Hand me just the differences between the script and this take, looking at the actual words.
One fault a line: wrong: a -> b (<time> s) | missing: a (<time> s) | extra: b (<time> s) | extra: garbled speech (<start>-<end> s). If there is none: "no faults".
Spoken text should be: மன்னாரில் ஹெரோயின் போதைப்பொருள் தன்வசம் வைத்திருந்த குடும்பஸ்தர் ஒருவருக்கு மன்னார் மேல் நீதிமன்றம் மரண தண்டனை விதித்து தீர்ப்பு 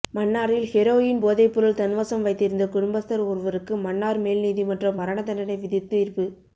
no faults